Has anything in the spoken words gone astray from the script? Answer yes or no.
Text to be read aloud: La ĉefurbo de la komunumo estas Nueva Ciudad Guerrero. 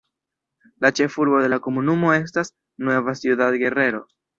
no